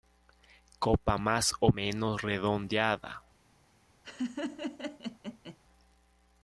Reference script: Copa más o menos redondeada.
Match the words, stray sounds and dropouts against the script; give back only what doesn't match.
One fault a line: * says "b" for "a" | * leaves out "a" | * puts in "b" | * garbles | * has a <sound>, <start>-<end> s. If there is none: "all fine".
* has a laugh, 4.0-5.6 s